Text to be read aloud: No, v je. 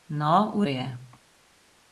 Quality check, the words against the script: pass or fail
pass